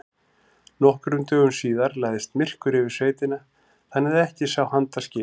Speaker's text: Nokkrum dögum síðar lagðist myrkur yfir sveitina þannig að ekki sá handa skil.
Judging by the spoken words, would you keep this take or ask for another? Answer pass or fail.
pass